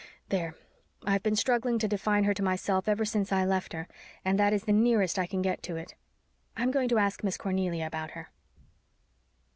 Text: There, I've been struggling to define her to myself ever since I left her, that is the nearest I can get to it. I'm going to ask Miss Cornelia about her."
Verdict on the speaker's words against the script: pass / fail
fail